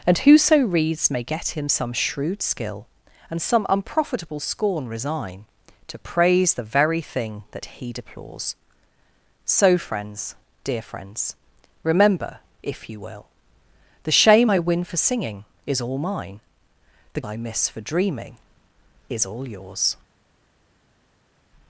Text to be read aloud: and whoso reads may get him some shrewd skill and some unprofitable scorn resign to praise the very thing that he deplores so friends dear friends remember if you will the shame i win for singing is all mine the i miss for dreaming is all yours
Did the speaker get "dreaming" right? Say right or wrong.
right